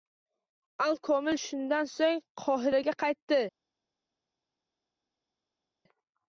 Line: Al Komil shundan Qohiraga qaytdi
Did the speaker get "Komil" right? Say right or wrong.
right